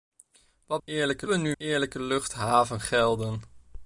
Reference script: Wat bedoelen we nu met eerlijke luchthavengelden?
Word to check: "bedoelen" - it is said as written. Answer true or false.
false